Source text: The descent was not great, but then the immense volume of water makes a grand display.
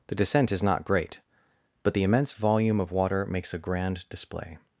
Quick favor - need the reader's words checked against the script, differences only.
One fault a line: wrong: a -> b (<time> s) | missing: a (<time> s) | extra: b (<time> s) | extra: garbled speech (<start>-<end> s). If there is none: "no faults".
wrong: was -> is (0.5 s)
missing: then (1.9 s)